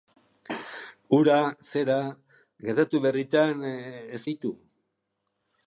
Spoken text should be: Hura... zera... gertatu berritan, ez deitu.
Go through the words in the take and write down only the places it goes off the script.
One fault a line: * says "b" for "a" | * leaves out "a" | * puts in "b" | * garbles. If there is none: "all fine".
all fine